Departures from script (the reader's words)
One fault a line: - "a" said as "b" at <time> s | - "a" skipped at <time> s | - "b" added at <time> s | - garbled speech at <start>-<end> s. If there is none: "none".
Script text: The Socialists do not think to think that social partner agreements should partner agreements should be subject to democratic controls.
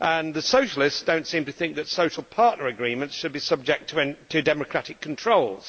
- "think" said as "seem" at 1.3 s
- "partner agreements should" skipped at 3.3 s